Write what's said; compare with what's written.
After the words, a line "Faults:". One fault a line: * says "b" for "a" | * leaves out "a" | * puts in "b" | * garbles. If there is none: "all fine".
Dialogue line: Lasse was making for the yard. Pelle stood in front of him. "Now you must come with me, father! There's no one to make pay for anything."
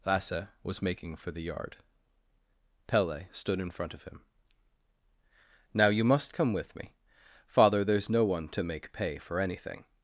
Lasse was making for the yard. Pelle stood in front of him. "Now you must come with me, father! There's no one to make pay for anything."
Faults:
all fine